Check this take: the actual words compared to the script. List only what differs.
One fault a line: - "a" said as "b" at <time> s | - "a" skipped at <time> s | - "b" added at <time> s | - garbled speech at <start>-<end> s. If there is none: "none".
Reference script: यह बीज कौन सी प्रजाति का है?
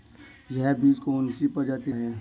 - "का" skipped at 1.9 s